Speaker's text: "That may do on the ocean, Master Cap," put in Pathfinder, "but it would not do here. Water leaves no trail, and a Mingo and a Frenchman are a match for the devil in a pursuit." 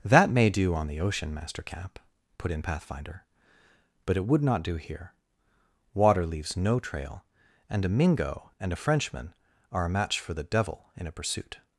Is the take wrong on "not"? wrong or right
right